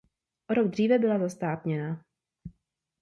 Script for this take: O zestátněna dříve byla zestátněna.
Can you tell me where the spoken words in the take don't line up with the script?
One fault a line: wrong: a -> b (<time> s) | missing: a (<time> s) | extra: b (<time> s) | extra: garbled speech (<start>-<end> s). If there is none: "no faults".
wrong: zestátněna -> rok (0.5 s)